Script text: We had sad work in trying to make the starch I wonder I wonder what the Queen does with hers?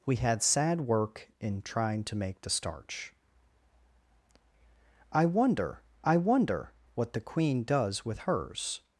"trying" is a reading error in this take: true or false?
false